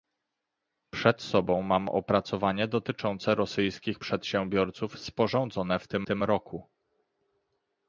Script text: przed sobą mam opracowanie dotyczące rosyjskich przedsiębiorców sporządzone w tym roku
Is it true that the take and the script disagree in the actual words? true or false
true